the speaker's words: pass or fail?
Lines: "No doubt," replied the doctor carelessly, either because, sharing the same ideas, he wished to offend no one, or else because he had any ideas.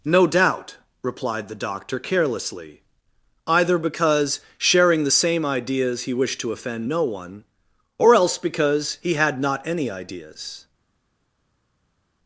fail